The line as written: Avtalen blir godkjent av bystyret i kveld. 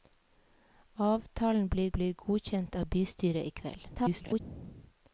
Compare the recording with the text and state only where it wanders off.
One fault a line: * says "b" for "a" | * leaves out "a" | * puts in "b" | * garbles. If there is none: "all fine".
* puts in "blir"
* garbles